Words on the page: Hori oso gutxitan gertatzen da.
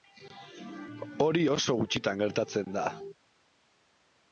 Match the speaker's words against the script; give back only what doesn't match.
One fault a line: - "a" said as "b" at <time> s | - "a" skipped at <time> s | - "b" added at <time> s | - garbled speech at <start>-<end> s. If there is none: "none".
none